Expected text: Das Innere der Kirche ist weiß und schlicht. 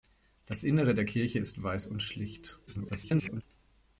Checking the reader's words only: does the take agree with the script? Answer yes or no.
no